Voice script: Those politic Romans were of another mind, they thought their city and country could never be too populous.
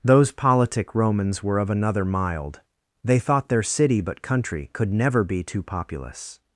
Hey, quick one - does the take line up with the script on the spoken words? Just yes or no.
no